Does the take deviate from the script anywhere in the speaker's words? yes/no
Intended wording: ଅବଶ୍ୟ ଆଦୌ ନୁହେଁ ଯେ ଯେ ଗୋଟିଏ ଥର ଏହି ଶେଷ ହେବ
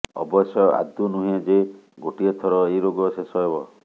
yes